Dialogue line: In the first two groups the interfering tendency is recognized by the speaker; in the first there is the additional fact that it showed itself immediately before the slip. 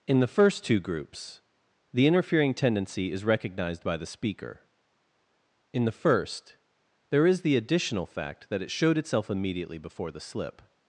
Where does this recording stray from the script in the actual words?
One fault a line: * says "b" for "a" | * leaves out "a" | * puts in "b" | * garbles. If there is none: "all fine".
all fine